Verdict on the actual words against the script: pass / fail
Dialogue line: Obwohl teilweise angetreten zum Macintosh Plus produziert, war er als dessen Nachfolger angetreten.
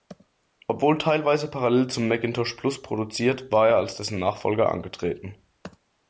fail